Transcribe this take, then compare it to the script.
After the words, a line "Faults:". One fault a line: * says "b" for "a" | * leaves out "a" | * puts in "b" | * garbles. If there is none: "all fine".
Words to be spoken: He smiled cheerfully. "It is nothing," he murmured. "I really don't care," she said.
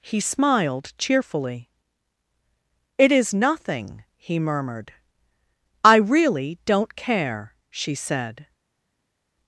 He smiled cheerfully. "It is nothing," he murmured. "I really don't care," she said.
Faults:
all fine